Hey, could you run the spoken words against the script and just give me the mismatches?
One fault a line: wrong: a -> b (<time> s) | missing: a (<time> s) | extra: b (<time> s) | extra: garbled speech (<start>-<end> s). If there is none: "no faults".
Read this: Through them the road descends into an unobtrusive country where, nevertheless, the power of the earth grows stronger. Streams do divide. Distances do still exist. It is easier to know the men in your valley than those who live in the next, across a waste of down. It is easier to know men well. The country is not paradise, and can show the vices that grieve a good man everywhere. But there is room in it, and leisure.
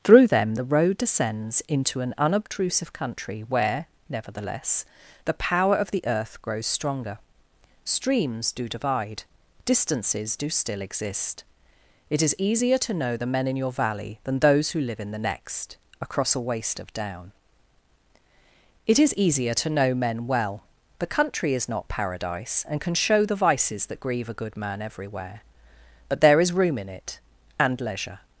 no faults